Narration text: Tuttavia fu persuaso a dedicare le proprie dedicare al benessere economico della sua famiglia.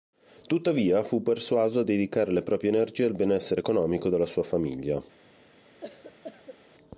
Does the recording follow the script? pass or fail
fail